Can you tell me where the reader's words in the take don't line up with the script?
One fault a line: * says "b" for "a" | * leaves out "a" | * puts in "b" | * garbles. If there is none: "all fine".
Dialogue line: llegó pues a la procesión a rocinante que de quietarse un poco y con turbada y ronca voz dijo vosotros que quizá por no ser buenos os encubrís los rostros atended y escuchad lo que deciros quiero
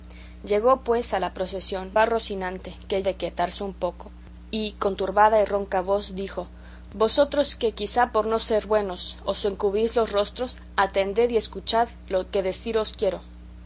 all fine